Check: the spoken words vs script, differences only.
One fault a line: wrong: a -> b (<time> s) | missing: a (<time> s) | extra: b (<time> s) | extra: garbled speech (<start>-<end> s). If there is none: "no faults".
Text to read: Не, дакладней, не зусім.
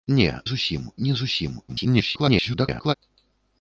wrong: дакладней -> зусім (0.4 s)
extra: garbled speech (1.7-2.9 s)